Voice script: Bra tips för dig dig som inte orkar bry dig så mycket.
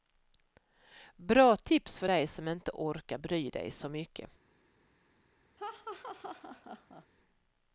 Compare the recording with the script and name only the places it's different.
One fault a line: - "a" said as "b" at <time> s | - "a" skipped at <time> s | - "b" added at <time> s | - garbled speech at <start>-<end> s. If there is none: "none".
- "dig" skipped at 2.3 s